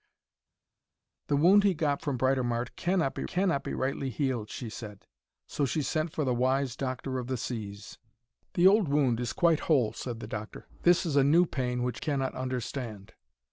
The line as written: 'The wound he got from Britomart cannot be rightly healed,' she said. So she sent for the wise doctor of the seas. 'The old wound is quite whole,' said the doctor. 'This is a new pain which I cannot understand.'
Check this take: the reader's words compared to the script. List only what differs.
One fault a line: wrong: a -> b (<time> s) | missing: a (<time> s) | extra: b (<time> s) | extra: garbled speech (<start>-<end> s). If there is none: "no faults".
extra: cannot be (3.3 s)
missing: I (12.0 s)